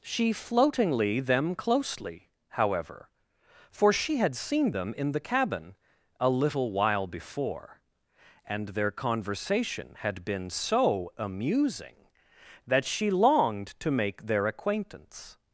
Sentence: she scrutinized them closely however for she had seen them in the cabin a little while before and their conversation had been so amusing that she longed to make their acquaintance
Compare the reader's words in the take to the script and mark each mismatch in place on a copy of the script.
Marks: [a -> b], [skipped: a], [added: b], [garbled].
she [scrutinized -> floatingly] them closely however for she had seen them in the cabin a little while before and their conversation had been so amusing that she longed to make their acquaintance